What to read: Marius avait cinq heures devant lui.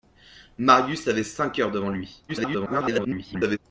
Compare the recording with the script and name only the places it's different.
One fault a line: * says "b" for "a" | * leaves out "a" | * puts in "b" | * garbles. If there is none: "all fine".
* garbles